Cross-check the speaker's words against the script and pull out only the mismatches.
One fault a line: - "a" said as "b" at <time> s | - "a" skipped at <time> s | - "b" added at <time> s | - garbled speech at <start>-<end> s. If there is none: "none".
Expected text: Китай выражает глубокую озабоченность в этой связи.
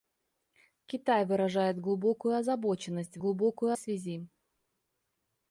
- "этой" said as "глубокую" at 3.2 s